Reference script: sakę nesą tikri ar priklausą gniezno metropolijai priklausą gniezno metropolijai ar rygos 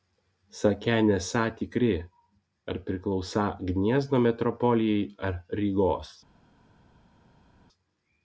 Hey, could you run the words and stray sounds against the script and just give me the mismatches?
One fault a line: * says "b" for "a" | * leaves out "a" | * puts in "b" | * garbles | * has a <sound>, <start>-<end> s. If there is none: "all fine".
* leaves out "priklausą gniezno metropolijai"